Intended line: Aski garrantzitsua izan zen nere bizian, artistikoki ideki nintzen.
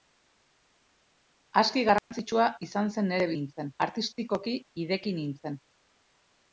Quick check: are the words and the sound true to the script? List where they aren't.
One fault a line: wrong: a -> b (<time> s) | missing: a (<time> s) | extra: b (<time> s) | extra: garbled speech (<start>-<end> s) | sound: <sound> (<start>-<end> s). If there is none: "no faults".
sound: dropout (2.0-2.1 s)
wrong: bizian -> nintzen (3.4 s)